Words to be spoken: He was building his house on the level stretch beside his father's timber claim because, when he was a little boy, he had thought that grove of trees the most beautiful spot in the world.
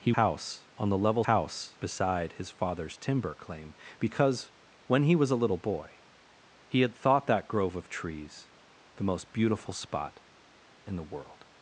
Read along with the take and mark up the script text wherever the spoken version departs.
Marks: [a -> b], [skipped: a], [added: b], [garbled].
He [skipped: was building his] house on the level [stretch -> house] beside his father's timber claim because, when he was a little boy, he had thought that grove of trees the most beautiful spot in the world.